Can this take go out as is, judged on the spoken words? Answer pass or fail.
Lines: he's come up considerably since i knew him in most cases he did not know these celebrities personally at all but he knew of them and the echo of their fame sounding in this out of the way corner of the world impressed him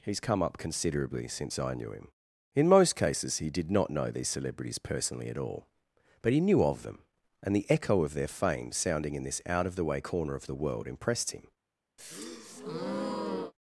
pass